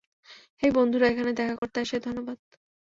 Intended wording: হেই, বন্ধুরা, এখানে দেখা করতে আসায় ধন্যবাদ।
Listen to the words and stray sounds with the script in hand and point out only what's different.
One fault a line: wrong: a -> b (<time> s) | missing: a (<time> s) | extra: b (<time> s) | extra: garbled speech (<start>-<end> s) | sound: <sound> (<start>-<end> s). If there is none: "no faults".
sound: dropout (1.6-1.6 s)